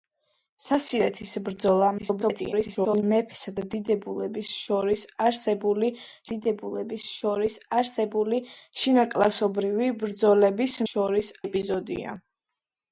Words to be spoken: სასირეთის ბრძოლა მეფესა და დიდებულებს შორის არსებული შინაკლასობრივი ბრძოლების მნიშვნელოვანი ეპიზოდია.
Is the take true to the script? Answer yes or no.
no